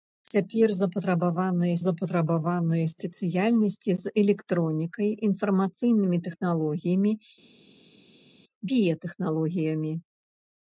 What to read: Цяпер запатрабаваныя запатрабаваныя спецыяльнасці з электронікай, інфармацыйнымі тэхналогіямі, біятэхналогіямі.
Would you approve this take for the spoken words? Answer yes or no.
yes